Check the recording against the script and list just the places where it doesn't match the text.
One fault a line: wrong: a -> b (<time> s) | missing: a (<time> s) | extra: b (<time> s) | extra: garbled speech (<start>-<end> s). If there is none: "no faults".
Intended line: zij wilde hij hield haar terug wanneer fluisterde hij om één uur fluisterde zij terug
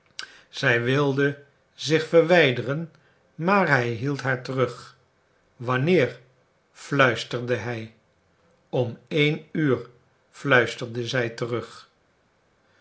extra: zich verwijderen maar (1.7 s)